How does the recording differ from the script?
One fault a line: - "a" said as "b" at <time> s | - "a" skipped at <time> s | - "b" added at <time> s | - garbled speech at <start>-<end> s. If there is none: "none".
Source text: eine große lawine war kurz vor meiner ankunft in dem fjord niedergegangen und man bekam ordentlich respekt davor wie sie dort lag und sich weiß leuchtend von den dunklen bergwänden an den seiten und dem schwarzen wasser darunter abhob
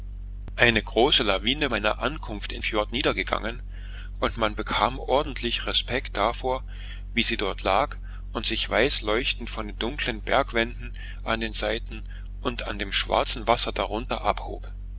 - "war kurz vor" skipped at 1.7 s
- "dem" skipped at 2.6 s